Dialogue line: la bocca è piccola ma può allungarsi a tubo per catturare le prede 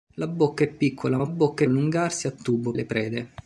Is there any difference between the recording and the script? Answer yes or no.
yes